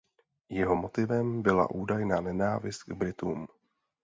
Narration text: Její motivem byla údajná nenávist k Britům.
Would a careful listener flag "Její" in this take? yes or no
yes